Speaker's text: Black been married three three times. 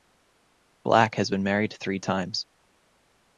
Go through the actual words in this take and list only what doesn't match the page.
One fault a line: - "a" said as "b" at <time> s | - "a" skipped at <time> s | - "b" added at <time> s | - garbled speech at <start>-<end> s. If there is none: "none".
- "has" added at 1.1 s
- "three" skipped at 2.0 s